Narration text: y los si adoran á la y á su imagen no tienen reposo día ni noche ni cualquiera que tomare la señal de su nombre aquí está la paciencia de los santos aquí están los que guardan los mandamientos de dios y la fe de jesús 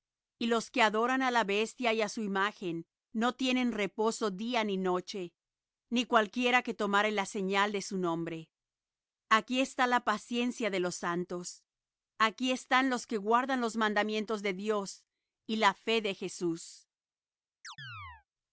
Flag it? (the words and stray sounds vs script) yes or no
yes